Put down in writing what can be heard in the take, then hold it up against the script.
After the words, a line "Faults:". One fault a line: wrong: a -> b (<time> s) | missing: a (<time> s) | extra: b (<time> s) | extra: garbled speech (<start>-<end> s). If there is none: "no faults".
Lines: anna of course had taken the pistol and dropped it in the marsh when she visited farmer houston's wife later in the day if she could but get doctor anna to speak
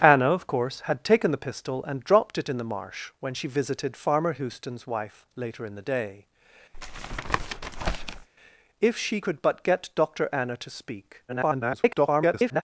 anna of course had taken the pistol and dropped it in the marsh when she visited farmer houston's wife later in the day if she could but get doctor anna to speak [garbled]
Faults:
extra: garbled speech (11.3-12.6 s)